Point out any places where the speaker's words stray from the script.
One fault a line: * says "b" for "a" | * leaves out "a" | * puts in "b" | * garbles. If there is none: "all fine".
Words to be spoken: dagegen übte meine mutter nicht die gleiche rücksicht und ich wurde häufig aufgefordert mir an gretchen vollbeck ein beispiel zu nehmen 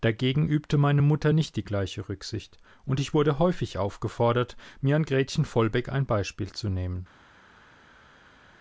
all fine